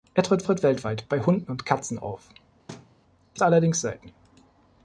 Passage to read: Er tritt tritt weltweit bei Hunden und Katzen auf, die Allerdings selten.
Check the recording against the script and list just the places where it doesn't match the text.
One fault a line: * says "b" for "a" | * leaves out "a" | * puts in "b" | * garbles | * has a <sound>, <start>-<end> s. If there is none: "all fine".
* has a thud, 2.7-3.0 s